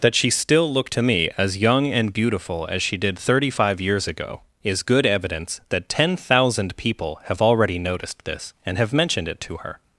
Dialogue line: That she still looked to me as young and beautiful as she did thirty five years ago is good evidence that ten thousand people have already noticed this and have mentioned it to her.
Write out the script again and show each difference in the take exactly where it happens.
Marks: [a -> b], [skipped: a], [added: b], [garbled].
That she still looked to me as young and beautiful as she did thirty five years ago is good evidence that ten thousand people have already noticed this and have mentioned it to her.